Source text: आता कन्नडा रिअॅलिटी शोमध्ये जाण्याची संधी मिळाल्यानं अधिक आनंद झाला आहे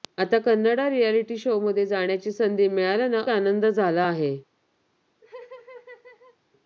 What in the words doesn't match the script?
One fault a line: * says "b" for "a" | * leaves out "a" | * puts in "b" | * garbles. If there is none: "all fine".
* leaves out "अधिक"